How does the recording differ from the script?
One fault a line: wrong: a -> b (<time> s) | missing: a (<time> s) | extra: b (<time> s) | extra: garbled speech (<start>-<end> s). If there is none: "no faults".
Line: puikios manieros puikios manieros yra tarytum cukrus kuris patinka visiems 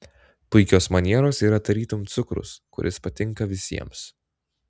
missing: puikios manieros (1.4 s)